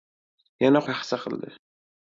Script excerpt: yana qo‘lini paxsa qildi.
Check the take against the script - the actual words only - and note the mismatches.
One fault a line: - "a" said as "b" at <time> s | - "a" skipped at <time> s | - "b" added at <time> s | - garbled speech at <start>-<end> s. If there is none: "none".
- "qo‘lini" skipped at 0.8 s